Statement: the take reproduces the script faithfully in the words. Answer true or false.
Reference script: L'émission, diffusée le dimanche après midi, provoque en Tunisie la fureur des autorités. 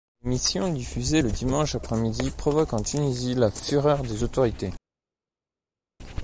true